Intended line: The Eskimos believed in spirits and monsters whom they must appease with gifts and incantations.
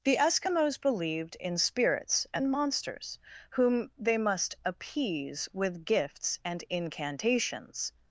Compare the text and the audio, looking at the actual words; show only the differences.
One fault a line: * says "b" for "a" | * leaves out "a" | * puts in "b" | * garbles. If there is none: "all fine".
all fine